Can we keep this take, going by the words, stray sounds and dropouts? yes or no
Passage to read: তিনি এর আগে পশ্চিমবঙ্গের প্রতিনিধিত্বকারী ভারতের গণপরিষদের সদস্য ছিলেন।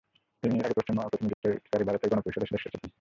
no